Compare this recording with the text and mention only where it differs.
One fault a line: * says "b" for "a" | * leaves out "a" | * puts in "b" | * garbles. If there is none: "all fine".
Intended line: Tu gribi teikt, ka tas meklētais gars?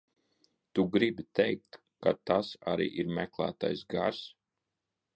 * puts in "arī ir"